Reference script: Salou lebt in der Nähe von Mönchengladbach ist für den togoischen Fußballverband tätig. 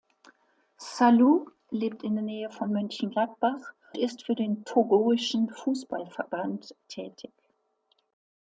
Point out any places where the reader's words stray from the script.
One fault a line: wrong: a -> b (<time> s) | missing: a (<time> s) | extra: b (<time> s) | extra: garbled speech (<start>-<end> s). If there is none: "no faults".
no faults